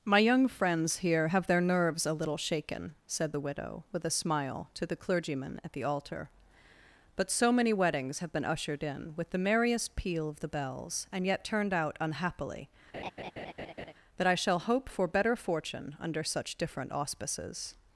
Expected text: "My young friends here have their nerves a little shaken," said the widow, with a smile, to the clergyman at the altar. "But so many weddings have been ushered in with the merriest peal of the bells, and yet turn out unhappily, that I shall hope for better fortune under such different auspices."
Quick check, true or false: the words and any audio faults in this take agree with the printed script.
false